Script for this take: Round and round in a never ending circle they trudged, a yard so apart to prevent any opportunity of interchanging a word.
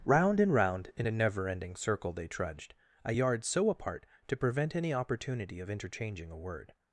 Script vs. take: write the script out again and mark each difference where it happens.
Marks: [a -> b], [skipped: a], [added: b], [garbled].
Round and round in a never ending circle they trudged, a yard so apart to prevent any opportunity of interchanging a word.